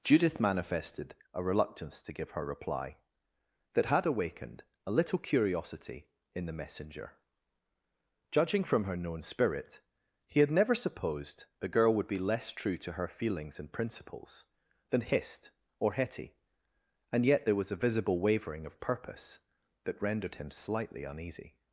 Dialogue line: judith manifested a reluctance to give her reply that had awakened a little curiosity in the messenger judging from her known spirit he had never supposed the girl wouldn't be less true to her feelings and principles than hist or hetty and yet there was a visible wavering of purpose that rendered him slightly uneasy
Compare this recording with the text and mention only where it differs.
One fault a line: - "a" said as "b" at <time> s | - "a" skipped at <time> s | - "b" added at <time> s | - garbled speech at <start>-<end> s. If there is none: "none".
- "wouldn't" said as "would" at 11.9 s